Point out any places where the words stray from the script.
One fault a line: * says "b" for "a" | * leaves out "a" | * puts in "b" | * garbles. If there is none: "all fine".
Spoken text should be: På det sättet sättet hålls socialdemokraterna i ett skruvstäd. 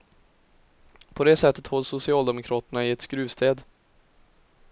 * leaves out "sättet"